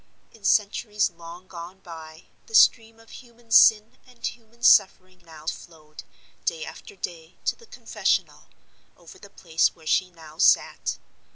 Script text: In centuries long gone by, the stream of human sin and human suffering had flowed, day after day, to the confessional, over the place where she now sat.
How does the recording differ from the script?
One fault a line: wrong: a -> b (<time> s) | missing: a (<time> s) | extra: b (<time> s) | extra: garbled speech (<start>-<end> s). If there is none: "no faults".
wrong: had -> now (5.2 s)